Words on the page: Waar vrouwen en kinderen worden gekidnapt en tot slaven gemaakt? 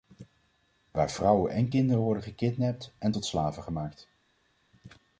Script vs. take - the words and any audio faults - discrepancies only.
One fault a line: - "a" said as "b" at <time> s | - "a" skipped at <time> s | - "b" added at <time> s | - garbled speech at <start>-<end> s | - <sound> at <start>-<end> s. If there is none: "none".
none